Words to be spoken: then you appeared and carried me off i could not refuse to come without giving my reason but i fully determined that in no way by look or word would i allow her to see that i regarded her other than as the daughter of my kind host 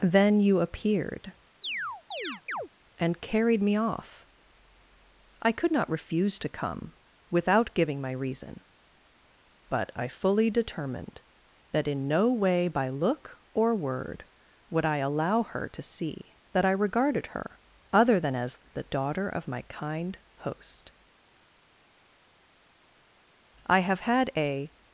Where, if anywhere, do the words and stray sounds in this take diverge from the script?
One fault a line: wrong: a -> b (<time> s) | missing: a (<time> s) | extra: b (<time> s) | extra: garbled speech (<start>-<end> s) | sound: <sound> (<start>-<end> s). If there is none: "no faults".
sound: chirp (1.6-2.7 s)
extra: i have had a (23.7 s)